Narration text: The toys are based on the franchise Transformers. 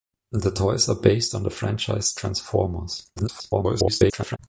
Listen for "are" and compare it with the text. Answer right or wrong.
right